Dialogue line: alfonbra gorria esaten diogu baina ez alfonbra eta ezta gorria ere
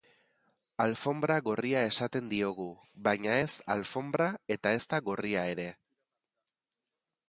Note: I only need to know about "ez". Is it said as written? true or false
true